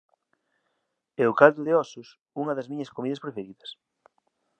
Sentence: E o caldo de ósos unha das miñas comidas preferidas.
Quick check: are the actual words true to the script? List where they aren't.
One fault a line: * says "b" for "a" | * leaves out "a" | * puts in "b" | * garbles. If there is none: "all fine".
all fine